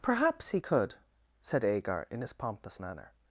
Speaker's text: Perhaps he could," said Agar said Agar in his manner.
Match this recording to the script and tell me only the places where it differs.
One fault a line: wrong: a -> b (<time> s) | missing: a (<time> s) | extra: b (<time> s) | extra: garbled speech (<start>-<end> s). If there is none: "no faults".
missing: said Agar (2.1 s)
extra: pompous (2.3 s)